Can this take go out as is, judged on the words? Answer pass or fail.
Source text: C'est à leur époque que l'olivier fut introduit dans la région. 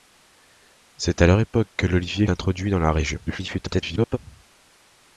fail